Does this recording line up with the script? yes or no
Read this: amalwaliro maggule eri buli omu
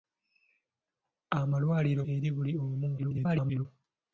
no